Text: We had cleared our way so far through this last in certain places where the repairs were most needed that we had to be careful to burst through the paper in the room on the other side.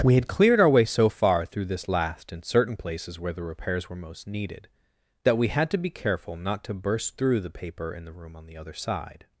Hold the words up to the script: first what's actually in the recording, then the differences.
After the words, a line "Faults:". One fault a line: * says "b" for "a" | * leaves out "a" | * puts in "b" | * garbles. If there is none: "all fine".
We had cleared our way so far through this last in certain places where the repairs were most needed that we had to be careful not to burst through the paper in the room on the other side.
Faults:
* puts in "not"